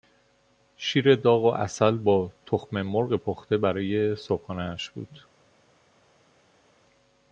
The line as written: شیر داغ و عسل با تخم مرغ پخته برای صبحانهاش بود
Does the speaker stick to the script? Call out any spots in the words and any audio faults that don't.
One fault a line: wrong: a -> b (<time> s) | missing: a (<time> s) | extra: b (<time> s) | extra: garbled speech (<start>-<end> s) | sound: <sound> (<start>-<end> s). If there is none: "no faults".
no faults